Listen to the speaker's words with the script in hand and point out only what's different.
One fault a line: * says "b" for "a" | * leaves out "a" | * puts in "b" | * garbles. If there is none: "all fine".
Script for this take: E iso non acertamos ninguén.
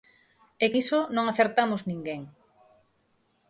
all fine